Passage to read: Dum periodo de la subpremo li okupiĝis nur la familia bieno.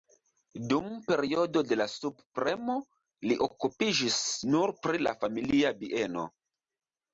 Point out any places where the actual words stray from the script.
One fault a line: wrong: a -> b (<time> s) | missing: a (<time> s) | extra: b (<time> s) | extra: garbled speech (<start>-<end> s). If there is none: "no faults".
extra: pri (4.9 s)